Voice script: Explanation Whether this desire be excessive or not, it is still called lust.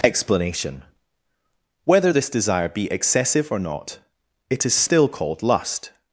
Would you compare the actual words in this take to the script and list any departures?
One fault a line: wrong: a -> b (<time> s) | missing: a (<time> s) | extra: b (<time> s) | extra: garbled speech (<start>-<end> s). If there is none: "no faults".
no faults